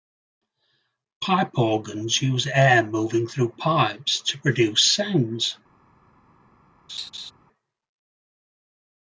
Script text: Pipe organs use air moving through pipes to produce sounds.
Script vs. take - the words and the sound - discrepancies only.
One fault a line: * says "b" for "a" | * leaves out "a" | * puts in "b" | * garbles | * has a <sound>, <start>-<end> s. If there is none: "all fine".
* has a laugh, 6.9-7.3 s